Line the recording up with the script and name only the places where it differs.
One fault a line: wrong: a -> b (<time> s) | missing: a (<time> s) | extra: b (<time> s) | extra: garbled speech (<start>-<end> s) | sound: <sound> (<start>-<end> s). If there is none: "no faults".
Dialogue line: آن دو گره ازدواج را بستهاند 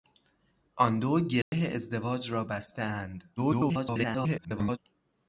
sound: dropout (1.4-1.5 s)
extra: garbled speech (3.4-4.8 s)